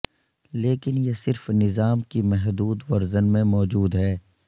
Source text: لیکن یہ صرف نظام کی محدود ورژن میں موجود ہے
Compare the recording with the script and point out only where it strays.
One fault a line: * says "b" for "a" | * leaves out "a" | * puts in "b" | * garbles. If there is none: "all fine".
all fine